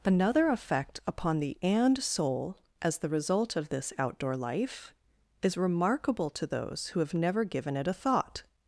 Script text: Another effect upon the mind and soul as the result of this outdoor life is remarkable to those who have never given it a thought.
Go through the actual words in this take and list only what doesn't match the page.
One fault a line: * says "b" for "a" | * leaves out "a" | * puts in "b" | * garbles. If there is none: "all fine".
* leaves out "mind"